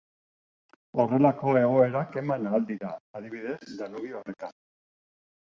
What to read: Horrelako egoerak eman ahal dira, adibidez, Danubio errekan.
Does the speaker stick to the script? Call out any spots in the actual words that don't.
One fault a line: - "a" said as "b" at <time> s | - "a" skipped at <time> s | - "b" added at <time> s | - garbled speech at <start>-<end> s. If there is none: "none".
none